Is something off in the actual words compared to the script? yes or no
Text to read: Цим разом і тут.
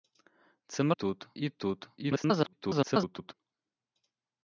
yes